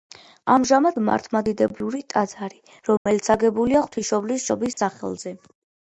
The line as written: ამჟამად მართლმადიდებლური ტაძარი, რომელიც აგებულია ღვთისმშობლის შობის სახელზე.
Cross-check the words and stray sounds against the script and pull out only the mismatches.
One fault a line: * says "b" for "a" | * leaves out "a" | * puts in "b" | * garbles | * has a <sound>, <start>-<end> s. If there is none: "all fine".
* has a dropout, 3.0-3.1 s
* has a dropout, 4.7-4.8 s